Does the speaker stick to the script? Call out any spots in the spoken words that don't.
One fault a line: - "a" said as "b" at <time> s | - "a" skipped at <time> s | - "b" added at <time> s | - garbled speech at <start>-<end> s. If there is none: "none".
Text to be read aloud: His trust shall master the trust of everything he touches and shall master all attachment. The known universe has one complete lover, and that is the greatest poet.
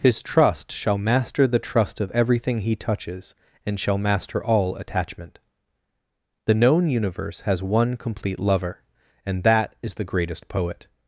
none